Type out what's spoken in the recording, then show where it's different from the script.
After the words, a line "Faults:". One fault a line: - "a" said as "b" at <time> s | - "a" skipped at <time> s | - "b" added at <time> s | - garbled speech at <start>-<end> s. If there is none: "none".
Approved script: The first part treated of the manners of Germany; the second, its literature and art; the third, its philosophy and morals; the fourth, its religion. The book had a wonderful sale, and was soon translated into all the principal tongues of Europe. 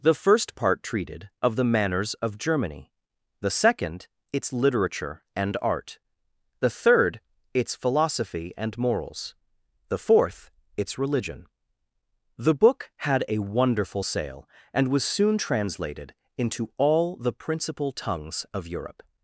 The first part treated of the manners of Germany; the second, its literature and art; the third, its philosophy and morals; the fourth, its religion. The book had a wonderful sale, and was soon translated into all the principal tongues of Europe.
Faults:
none